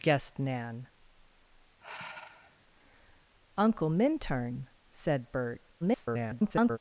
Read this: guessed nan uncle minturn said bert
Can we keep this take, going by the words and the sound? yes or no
no